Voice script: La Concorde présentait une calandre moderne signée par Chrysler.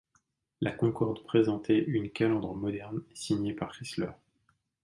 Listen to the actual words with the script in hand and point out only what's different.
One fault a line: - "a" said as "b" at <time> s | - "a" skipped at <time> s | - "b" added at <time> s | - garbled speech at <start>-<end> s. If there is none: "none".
none